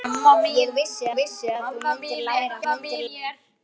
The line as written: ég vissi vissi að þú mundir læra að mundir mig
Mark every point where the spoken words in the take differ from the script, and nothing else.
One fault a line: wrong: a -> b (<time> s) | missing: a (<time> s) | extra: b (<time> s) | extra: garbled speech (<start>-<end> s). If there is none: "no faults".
no faults